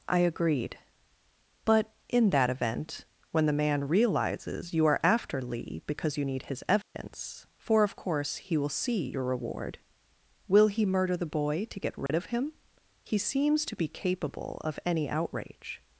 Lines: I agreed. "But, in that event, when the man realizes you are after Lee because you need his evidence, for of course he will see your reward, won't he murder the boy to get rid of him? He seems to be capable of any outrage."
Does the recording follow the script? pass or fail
fail